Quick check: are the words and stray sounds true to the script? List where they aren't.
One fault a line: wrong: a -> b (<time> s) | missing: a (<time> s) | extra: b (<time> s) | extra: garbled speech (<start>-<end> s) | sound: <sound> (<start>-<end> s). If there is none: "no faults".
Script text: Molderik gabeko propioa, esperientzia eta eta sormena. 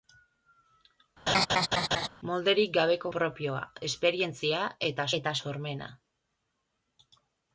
sound: laugh (1.3-2.1 s)